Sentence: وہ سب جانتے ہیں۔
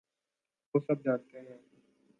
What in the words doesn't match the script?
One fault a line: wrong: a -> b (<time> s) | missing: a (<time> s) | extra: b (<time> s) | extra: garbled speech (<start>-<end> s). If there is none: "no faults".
no faults